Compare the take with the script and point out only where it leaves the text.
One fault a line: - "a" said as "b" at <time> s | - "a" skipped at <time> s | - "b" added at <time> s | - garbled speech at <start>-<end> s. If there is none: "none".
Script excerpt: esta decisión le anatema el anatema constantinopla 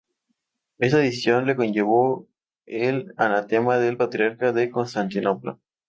- "anatema" said as "conllevó" at 1.6 s
- "del patriarca de" added at 3.8 s